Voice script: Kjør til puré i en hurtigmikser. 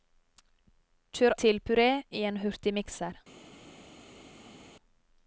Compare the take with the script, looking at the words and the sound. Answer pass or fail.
pass